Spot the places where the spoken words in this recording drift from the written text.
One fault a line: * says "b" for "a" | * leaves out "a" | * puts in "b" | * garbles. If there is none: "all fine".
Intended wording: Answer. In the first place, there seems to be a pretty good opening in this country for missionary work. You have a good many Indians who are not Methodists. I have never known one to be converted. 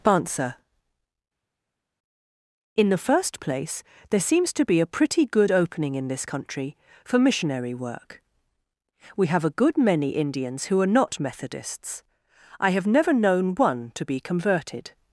* says "We" for "You"